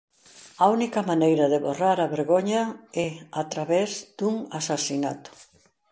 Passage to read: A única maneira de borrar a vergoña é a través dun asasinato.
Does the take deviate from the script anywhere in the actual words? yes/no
no